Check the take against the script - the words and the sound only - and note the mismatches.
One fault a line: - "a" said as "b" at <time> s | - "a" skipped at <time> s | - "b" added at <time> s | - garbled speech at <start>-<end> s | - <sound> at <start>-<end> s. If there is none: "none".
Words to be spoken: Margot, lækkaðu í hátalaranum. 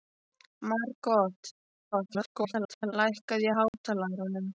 - garbled speech at 1.9-2.9 s
- dropout at 3.7-3.7 s